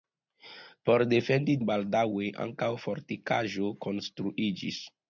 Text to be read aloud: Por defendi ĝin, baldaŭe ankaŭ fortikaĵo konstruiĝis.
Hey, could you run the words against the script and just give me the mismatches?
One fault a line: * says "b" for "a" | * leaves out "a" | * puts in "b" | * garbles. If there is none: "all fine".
* leaves out "ĝin"